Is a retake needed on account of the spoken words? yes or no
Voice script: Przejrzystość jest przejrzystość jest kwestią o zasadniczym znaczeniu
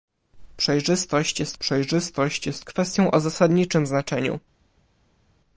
no